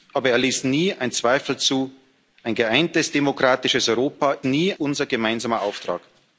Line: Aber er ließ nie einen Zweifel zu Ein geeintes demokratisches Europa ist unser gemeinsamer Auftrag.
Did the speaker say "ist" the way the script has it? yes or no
no